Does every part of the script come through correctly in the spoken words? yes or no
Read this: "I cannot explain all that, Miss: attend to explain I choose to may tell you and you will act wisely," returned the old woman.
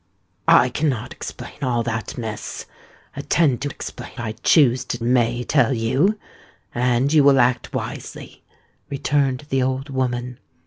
yes